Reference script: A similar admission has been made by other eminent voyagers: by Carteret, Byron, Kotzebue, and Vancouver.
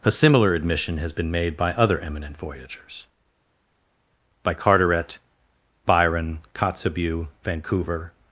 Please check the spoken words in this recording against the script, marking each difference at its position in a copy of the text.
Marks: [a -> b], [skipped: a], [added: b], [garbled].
A similar admission has been made by other eminent voyagers: by Carteret, Byron, Kotzebue, [skipped: and] Vancouver.